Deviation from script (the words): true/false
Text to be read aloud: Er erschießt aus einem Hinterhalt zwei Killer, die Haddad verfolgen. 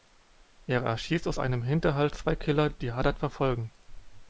false